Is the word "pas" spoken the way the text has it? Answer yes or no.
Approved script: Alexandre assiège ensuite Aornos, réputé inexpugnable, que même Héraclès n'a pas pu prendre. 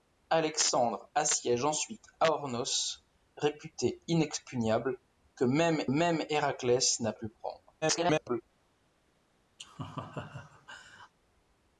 no